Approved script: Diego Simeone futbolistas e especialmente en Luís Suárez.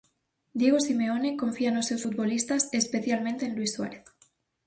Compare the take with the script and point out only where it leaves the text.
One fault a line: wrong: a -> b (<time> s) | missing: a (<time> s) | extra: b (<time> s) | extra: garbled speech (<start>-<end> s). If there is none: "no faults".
extra: confía nos seus (1.4 s)